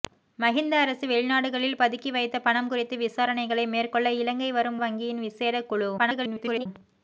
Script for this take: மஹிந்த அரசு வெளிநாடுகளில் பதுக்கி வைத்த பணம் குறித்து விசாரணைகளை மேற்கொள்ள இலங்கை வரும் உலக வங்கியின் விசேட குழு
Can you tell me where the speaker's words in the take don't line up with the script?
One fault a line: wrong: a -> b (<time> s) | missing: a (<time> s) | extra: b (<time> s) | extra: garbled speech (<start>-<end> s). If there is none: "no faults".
missing: உலக (4.8 s)
extra: garbled speech (6.0-6.7 s)